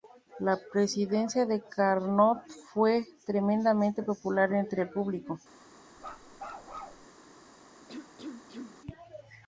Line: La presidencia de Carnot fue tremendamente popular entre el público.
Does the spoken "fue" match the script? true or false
true